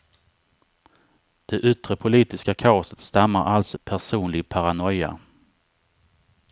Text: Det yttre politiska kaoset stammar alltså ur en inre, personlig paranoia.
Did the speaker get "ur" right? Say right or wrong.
wrong